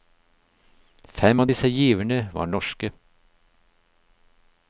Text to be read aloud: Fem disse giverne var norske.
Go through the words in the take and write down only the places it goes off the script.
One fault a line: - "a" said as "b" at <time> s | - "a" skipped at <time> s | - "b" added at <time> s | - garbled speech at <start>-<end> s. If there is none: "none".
- "av" added at 1.4 s